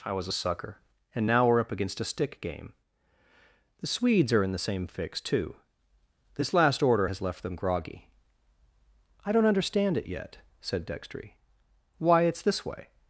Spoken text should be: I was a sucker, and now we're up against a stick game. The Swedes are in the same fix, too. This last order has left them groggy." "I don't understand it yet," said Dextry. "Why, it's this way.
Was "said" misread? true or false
false